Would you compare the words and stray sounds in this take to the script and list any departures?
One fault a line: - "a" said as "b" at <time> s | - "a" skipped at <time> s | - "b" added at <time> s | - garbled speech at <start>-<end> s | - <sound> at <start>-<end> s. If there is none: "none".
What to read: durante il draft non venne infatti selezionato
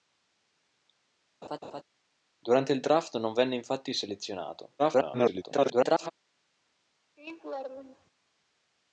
- laugh at 1.4-1.8 s
- garbled speech at 4.8-6.1 s
- laugh at 7.2-8.1 s